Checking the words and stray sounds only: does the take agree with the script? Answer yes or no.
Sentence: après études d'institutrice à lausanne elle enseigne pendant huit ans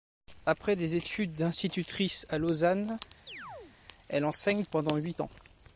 no